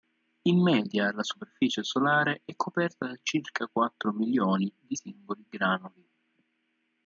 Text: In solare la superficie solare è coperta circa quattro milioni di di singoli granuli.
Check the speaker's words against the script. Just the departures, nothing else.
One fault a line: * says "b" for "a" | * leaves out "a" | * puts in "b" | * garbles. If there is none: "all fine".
* says "media" for "solare"
* puts in "da"
* leaves out "di"